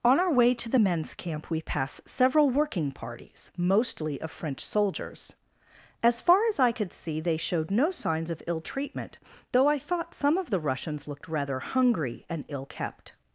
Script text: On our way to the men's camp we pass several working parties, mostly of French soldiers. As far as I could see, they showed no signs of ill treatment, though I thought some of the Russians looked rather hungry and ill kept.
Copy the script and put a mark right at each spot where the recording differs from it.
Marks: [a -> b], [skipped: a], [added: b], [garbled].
On our way to the men's camp we pass several working parties, mostly of French soldiers. As far as I could see, they showed no signs of ill treatment, though I thought some of the Russians looked rather hungry and ill kept.